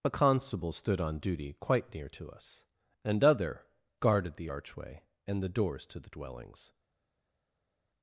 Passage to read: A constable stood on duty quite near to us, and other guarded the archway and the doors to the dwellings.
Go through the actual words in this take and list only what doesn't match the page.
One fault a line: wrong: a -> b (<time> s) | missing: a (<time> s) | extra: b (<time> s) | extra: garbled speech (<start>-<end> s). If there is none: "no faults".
no faults